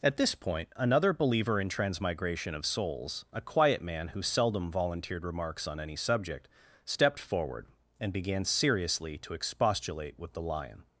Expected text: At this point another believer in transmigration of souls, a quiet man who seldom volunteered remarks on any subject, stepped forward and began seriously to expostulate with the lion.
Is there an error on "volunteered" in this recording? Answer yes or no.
no